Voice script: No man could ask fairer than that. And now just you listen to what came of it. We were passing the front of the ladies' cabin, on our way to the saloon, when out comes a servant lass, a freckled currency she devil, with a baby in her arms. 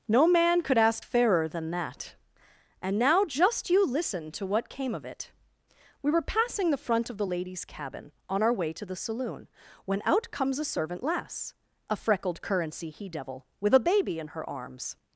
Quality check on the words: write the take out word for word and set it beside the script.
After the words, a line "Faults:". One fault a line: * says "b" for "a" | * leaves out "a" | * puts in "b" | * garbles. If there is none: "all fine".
No man could ask fairer than that. And now just you listen to what came of it. We were passing the front of the ladies' cabin, on our way to the saloon, when out comes a servant lass, a freckled currency he devil, with a baby in her arms.
Faults:
* says "he" for "she"